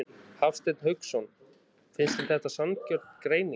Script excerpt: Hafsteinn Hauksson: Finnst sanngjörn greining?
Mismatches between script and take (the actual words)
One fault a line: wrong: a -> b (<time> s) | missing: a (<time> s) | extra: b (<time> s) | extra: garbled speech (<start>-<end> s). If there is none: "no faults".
extra: þér þetta (2.2 s)